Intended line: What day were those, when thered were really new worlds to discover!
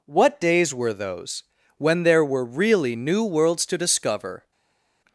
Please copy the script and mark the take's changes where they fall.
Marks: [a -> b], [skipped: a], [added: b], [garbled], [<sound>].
What [day -> days] were those, when [thered -> there] were really new worlds to discover!